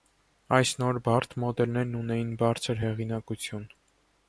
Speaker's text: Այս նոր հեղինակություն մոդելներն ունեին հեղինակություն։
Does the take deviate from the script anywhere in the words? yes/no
yes